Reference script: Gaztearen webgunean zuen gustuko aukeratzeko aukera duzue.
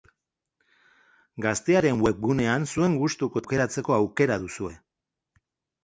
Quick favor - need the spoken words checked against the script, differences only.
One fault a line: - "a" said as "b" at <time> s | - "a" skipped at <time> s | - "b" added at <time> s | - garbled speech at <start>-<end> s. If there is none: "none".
none